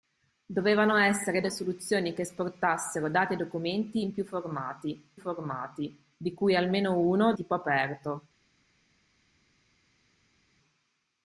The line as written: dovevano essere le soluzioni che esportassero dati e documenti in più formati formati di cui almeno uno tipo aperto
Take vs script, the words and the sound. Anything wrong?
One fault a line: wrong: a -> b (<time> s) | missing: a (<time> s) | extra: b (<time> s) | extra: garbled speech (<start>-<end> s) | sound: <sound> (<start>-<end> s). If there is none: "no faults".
no faults